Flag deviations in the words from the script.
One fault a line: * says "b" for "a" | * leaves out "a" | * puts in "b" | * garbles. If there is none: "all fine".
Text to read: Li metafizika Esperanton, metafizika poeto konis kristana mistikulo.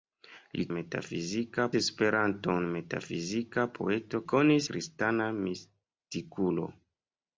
all fine